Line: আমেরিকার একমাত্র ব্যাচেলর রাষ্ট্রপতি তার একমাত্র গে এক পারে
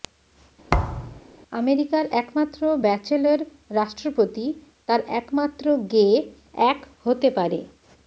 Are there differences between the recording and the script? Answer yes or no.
yes